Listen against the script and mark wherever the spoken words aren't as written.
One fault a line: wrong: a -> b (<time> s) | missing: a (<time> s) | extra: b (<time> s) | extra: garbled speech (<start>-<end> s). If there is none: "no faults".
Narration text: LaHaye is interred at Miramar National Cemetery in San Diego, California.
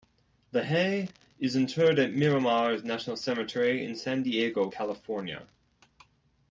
no faults